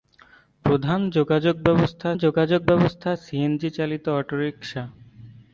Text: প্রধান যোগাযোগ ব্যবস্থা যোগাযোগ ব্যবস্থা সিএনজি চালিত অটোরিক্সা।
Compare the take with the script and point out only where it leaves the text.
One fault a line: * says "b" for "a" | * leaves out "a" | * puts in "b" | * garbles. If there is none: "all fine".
all fine